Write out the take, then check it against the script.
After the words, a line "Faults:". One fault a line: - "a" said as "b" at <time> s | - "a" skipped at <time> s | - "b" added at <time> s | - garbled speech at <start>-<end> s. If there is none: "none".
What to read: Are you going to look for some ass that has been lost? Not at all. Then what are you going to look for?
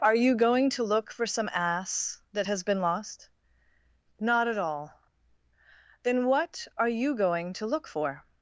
Are you going to look for some ass that has been lost? Not at all. Then what are you going to look for?
Faults:
none